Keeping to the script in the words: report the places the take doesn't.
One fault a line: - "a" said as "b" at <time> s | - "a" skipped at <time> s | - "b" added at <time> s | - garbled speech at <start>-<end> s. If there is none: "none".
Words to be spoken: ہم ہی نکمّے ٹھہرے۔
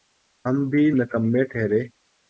- "ہی" said as "بھی" at 0.7 s